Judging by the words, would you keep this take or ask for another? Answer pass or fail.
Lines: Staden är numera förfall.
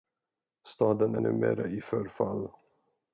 fail